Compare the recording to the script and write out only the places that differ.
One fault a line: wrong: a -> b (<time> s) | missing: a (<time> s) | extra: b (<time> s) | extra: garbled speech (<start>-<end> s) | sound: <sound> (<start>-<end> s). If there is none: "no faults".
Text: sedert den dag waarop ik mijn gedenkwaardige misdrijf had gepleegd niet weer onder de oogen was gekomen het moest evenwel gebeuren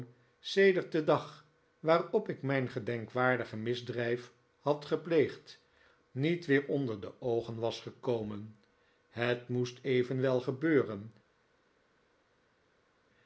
no faults